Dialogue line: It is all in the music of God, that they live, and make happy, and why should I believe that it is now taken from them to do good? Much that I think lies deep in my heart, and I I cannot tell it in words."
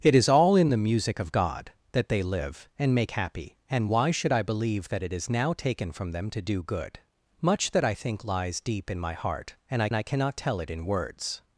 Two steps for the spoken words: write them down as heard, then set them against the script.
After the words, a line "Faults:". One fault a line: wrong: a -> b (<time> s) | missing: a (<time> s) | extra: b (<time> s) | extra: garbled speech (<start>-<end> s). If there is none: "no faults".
It is all in the music of God, that they live, and make happy, and why should I believe that it is now taken from them to do good? Much that I think lies deep in my heart, and I I cannot tell it in words."
Faults:
no faults